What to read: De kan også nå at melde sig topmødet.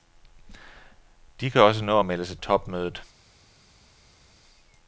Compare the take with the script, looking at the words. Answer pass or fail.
pass